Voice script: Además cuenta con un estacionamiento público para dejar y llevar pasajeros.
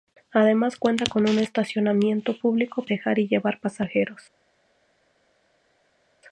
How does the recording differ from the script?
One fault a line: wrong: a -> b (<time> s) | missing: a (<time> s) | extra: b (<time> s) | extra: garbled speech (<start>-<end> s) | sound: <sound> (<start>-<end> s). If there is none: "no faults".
missing: para (2.8 s)